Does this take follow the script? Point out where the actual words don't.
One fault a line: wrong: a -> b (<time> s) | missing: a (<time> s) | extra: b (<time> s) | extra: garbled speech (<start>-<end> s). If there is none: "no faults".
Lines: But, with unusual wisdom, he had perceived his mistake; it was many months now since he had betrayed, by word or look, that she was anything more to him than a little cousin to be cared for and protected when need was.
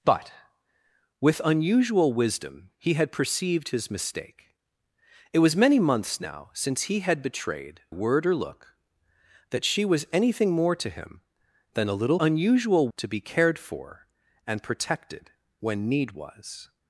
missing: by (7.8 s)
wrong: cousin -> unusual (12.2 s)